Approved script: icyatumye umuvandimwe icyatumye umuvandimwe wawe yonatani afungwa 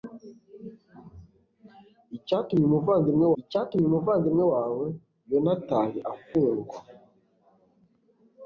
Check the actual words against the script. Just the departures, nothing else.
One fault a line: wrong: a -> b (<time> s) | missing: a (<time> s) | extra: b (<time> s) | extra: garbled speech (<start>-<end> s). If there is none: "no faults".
no faults